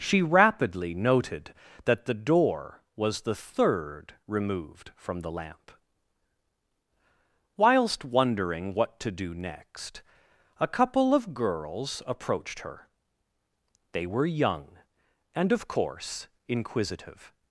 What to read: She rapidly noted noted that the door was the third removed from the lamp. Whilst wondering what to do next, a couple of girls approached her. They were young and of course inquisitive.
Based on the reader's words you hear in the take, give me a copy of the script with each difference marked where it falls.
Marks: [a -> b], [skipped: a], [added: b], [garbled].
She rapidly noted [skipped: noted] that the door was the third removed from the lamp. Whilst wondering what to do next, a couple of girls approached her. They were young and of course inquisitive.